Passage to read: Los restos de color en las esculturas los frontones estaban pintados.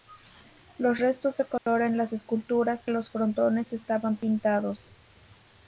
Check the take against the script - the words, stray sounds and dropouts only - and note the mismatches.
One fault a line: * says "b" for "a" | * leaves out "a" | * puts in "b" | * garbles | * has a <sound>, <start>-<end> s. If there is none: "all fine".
* has a dropout, 1.6-1.7 s